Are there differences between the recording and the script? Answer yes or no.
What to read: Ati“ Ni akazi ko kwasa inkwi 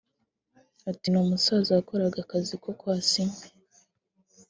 yes